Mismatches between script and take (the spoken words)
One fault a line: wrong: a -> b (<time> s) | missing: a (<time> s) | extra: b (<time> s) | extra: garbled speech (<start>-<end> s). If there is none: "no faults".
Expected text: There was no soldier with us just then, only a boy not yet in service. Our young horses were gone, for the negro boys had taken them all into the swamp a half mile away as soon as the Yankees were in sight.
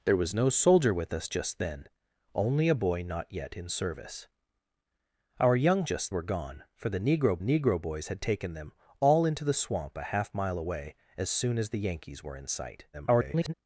wrong: horses -> just (5.8 s)
extra: negro (7.4 s)
extra: garbled speech (12.9-13.5 s)